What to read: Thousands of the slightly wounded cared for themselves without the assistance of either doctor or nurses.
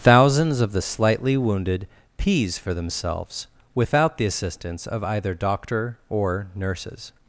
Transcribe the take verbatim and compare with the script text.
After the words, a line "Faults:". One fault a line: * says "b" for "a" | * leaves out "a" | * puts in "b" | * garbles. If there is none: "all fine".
Thousands of the slightly wounded pees for themselves without the assistance of either doctor or nurses.
Faults:
* says "pees" for "cared"